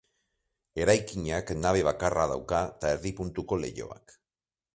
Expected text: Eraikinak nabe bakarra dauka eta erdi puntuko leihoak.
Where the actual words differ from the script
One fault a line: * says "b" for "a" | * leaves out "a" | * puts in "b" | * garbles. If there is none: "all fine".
all fine